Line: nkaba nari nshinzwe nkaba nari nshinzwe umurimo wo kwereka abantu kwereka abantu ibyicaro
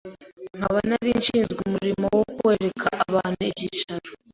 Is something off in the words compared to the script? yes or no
yes